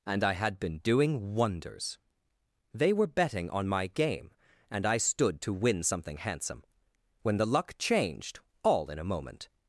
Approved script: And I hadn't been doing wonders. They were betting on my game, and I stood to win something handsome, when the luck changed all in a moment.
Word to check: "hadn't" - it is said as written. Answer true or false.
false